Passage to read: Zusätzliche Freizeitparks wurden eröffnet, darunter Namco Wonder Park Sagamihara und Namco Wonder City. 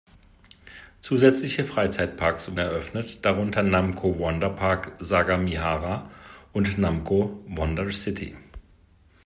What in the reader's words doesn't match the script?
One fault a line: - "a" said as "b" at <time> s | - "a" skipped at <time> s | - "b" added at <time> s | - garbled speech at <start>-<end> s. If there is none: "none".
- "wurden" skipped at 2.5 s